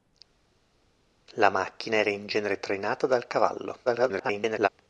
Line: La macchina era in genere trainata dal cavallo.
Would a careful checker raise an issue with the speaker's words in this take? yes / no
yes